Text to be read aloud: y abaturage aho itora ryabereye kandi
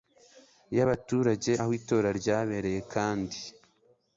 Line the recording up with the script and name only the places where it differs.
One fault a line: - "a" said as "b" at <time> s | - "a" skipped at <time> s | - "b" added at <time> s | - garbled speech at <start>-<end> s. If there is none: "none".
none